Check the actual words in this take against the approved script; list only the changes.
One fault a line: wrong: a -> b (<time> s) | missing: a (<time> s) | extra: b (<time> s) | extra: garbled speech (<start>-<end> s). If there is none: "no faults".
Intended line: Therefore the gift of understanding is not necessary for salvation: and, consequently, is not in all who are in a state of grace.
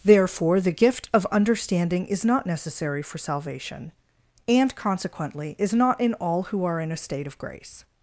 no faults